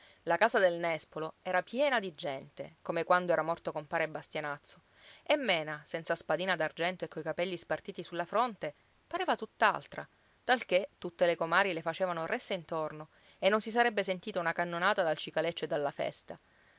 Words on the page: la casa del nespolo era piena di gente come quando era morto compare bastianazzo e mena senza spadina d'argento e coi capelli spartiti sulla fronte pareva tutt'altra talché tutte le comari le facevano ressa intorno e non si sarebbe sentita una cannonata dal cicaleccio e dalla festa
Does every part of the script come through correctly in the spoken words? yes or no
yes